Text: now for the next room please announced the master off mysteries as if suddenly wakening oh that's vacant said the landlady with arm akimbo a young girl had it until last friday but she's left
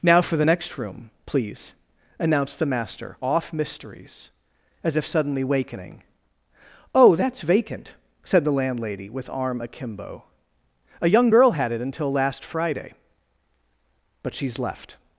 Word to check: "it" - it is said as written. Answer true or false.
true